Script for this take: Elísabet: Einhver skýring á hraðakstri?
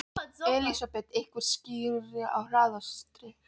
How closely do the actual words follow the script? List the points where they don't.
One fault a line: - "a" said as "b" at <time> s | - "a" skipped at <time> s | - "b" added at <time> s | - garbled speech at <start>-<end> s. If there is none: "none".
none